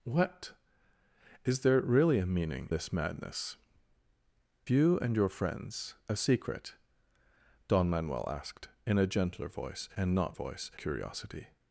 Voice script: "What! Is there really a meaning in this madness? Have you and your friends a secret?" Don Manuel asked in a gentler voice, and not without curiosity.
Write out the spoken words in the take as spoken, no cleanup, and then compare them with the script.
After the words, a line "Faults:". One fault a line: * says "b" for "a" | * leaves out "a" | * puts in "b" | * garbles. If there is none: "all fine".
"What! Is there really a meaning this madness? You and your friends a secret?" Don Manuel asked in a gentler voice, and not voice curiosity.
Faults:
* leaves out "in"
* leaves out "Have"
* says "voice" for "without"